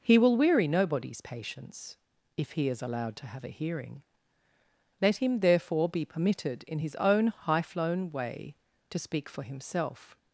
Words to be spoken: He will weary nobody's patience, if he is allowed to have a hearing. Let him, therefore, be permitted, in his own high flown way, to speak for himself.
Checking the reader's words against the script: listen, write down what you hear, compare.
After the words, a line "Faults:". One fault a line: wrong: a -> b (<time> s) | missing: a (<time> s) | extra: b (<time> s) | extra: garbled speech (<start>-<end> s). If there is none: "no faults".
He will weary nobody's patience, if he is allowed to have a hearing. Let him, therefore, be permitted, in his own high flown way, to speak for himself.
Faults:
no faults